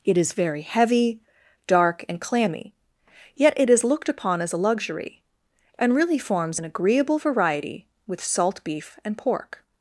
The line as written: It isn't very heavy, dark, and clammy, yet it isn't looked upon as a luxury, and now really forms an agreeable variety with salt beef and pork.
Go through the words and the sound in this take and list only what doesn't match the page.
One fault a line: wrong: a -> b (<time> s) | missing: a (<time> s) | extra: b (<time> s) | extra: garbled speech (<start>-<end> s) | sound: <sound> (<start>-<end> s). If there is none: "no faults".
wrong: isn't -> is (0.2 s)
wrong: isn't -> is (3.7 s)
missing: now (5.9 s)